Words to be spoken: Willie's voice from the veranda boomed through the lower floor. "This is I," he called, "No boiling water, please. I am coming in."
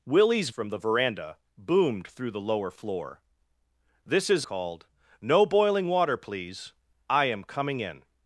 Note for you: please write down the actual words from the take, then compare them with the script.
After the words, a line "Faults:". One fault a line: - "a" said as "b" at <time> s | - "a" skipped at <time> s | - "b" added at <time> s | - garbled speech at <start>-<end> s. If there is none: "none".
Willie's from the veranda boomed through the lower floor. "This is called, "No boiling water, please. I am coming in."
Faults:
- "voice" skipped at 0.5 s
- "I he" skipped at 4.5 s